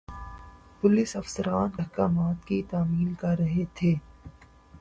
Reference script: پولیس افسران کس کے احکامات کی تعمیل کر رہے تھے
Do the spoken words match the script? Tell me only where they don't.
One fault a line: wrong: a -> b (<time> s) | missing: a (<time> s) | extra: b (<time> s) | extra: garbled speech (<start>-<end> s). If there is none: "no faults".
missing: کس کے (1.7 s)